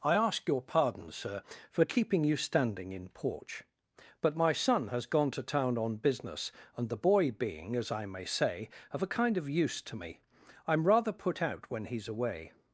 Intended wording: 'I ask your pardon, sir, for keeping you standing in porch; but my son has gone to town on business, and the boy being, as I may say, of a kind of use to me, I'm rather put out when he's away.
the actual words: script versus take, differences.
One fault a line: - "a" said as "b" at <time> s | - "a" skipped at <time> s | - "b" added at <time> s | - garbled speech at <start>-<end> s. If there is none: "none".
none